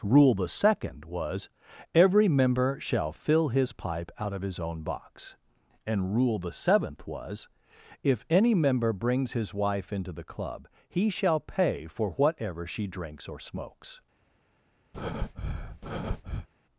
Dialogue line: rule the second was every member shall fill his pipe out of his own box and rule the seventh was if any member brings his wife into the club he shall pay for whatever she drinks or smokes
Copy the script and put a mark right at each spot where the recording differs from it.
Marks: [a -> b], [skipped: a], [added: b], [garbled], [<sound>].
rule the second was every member shall fill his pipe out of his own box and rule the seventh was if any member brings his wife into the club he shall pay for whatever she drinks or smokes [breath]